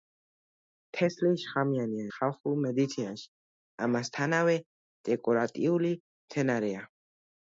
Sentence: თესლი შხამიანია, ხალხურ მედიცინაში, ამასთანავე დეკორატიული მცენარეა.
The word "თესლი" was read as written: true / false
true